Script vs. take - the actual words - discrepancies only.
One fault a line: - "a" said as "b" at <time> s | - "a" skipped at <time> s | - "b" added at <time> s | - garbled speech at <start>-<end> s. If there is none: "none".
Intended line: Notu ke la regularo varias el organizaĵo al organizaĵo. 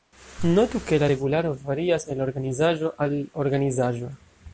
none